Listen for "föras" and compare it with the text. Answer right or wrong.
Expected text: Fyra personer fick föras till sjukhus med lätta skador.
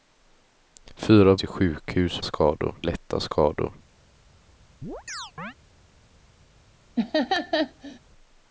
wrong